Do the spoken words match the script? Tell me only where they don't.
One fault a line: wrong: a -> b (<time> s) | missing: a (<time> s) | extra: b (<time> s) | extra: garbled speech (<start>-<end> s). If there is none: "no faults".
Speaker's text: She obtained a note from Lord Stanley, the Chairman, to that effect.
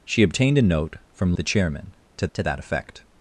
missing: Lord Stanley (1.3 s)
extra: to (2.3 s)